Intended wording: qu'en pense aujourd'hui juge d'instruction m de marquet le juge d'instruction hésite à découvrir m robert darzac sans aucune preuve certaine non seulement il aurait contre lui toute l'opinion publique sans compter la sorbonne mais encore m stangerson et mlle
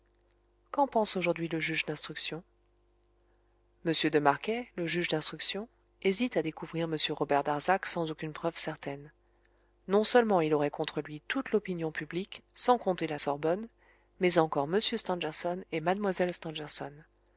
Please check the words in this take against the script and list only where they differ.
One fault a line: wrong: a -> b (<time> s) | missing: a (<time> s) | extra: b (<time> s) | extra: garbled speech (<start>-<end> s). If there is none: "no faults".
extra: le (1.5 s)